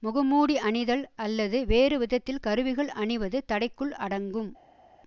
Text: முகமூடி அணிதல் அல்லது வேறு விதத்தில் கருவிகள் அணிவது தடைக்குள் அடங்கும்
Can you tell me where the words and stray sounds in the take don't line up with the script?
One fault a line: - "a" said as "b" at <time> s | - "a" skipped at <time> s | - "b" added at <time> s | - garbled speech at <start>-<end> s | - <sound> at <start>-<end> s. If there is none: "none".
none